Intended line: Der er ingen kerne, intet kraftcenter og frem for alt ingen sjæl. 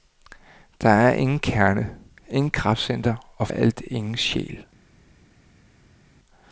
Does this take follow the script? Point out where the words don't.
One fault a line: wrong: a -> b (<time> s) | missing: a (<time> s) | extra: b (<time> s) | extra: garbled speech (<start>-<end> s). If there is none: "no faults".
missing: frem for (3.5 s)